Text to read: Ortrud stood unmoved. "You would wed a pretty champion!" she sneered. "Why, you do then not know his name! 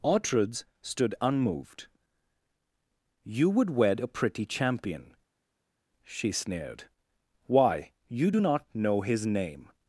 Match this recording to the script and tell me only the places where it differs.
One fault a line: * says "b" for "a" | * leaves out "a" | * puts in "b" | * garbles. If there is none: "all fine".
* leaves out "then"